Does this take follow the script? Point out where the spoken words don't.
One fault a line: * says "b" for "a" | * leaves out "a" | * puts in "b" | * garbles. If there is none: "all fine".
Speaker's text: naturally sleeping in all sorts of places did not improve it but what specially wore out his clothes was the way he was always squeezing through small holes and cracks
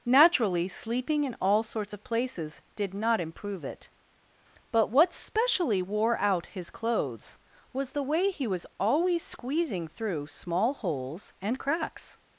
all fine